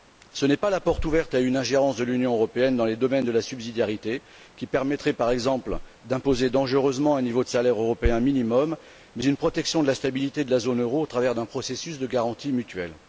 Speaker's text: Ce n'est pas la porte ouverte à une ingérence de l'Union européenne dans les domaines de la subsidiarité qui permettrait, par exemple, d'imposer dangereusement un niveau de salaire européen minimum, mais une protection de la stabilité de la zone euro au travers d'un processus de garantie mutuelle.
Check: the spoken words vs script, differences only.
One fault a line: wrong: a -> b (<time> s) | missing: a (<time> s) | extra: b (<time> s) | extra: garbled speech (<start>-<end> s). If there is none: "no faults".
no faults